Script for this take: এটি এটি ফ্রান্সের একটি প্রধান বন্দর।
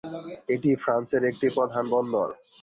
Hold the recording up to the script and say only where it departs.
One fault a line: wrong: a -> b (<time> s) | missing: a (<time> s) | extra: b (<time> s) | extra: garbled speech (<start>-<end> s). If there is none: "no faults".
missing: এটি (0.7 s)